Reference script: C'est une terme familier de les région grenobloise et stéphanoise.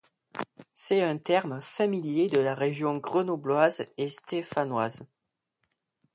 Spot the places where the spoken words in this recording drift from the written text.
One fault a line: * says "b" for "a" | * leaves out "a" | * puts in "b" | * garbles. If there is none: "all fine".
* says "un" for "une"
* says "la" for "les"